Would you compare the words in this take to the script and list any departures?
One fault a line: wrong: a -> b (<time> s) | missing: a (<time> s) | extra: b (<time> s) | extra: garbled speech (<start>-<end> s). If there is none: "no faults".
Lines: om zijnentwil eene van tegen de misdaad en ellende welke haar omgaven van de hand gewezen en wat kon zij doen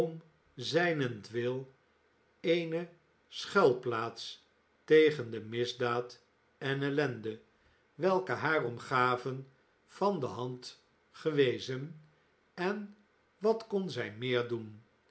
wrong: van -> schuilplaats (3.3 s)
extra: meer (14.1 s)